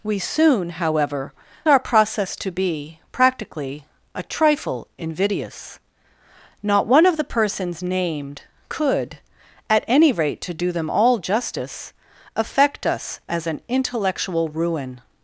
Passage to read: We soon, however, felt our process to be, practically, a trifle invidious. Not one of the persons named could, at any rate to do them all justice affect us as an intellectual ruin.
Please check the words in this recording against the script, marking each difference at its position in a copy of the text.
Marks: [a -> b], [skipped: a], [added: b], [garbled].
We soon, however, [skipped: felt] our process to be, practically, a trifle invidious. Not one of the persons named could, at any rate to do them all justice affect us as an intellectual ruin.